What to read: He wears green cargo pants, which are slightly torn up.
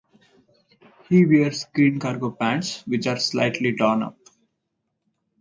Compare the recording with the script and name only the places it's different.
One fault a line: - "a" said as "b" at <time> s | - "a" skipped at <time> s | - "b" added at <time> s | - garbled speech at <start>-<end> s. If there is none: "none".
none